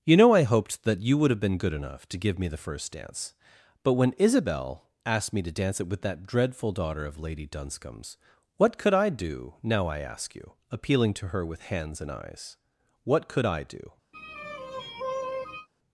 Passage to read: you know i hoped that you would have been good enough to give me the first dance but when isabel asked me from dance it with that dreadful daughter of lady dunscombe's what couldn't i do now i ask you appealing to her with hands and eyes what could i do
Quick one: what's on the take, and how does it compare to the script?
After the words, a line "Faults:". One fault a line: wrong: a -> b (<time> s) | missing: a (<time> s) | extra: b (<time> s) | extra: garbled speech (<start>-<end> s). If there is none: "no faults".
you know i hoped that you would have been good enough to give me the first dance but when isabel asked me to dance it with that dreadful daughter of lady dunscombe's what could i do now i ask you appealing to her with hands and eyes what could i do
Faults:
wrong: from -> to (5.4 s)
wrong: couldn't -> could (8.8 s)